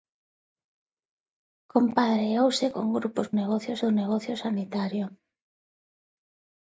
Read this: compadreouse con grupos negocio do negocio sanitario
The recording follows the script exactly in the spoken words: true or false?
true